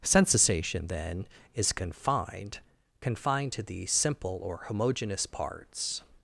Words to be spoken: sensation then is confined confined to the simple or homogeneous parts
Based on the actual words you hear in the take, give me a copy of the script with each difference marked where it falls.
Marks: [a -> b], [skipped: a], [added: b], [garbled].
sensation then is confined confined to the simple or homogeneous parts